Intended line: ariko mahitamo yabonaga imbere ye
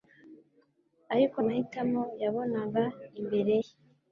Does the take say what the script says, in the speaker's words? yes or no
yes